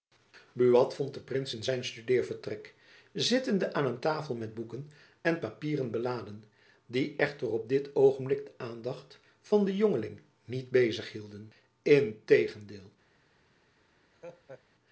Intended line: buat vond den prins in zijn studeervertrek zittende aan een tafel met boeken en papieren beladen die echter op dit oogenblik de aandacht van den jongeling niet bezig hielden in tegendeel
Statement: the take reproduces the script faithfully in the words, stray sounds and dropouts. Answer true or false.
false